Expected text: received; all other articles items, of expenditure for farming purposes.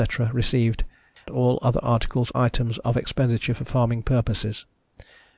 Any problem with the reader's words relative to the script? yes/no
no